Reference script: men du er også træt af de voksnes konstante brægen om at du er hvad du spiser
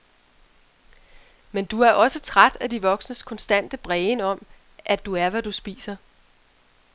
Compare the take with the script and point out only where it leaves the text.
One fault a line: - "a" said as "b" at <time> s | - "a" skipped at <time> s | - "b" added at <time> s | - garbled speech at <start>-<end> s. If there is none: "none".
none